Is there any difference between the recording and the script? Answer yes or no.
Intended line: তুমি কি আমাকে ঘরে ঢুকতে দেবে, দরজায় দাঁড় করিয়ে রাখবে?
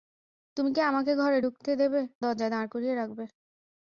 no